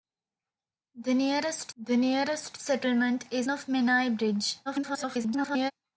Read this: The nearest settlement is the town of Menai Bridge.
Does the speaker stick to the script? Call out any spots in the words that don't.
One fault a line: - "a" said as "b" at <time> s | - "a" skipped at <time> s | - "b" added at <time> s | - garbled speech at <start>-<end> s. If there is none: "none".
- "the nearest" added at 1.8 s
- "the town" skipped at 3.5 s
- garbled speech at 4.7-5.7 s